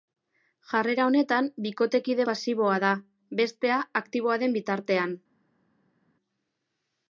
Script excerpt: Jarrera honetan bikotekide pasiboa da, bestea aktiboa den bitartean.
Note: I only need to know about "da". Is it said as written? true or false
true